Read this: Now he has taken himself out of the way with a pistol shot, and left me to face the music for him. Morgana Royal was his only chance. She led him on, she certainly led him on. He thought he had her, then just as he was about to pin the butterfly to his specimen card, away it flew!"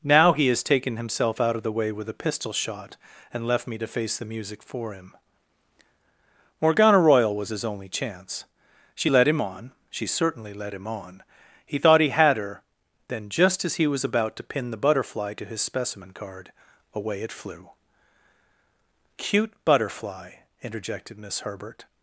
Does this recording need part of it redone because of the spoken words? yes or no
yes